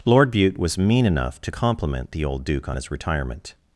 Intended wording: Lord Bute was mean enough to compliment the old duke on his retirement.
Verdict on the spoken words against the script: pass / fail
pass